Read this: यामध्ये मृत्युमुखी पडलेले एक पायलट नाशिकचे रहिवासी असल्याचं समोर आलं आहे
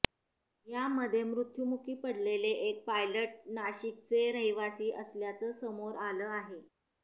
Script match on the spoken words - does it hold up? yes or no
yes